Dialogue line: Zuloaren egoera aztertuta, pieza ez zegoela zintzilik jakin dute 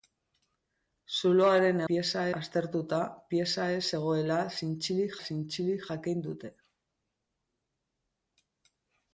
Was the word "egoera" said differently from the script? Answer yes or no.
yes